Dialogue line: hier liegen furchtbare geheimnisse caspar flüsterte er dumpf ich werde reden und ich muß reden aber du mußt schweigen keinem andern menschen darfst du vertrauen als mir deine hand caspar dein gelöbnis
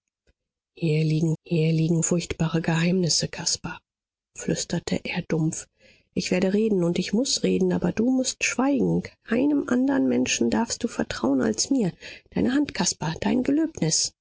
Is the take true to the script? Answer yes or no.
no